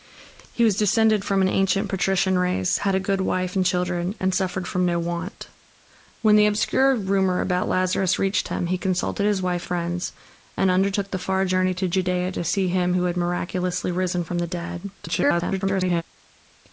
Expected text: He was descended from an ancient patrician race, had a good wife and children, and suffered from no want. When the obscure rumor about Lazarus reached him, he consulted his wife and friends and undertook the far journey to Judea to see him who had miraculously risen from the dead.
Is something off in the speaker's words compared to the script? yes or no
yes